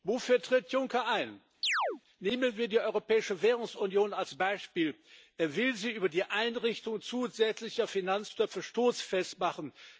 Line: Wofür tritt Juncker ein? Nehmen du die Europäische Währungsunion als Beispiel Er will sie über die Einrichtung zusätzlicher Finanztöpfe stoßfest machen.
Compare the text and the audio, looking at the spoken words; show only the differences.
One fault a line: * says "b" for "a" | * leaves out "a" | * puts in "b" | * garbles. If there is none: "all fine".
* says "wir" for "du"